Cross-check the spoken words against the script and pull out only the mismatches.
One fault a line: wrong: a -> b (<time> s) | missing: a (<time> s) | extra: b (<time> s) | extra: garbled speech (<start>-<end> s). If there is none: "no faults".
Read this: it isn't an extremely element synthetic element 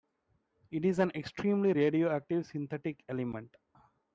wrong: isn't -> is (0.8 s)
wrong: element -> radioactive (1.7 s)